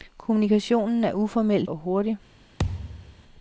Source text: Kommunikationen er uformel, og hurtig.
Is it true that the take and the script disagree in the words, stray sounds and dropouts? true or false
true